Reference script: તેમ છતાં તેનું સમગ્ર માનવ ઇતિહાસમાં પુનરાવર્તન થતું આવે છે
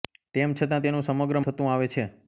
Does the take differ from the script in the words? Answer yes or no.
yes